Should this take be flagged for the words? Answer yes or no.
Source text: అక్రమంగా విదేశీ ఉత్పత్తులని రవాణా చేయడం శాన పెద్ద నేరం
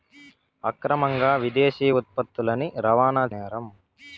yes